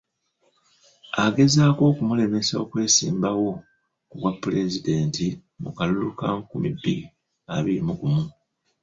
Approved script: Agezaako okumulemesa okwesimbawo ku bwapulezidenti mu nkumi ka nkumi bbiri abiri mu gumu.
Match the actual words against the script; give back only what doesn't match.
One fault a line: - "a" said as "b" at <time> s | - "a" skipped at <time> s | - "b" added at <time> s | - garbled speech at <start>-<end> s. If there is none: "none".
- "nkumi" said as "kalulu" at 5.8 s